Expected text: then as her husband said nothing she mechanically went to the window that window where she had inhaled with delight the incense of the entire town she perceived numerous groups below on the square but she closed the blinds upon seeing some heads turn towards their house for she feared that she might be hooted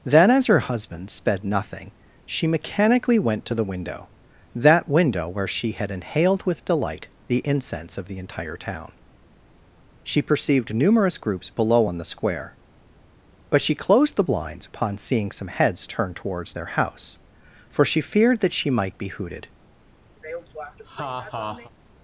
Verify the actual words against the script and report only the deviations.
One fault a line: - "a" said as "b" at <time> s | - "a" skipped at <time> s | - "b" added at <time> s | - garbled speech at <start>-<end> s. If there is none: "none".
- "said" said as "sped" at 1.1 s